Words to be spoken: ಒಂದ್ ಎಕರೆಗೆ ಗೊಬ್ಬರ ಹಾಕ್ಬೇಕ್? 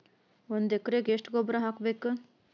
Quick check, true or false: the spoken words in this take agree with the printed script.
false